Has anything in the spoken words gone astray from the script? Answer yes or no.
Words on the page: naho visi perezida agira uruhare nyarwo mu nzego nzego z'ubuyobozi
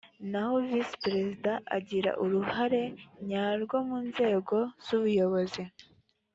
yes